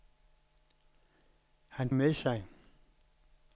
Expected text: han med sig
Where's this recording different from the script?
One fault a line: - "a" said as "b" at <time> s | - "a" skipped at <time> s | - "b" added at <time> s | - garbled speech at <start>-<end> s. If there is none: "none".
none